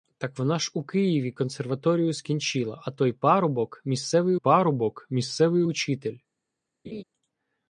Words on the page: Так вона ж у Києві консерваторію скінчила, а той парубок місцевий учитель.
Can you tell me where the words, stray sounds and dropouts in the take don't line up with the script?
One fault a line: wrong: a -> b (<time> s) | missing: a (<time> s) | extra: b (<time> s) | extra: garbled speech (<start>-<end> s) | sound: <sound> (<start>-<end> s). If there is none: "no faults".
extra: парубок місцевий (4.3 s)
sound: laugh (6.8-7.0 s)